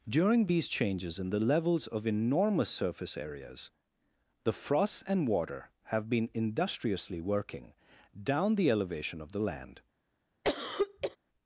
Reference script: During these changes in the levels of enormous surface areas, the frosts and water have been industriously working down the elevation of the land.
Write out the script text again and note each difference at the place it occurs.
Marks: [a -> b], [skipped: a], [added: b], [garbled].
During these changes in the levels of enormous surface areas, the frosts and water have been industriously working down the elevation of the land.